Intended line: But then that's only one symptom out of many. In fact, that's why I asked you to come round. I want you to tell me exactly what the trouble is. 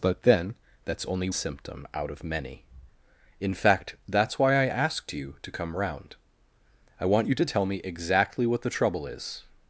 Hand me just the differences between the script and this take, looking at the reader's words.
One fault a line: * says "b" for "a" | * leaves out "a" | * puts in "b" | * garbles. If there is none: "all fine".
* leaves out "one"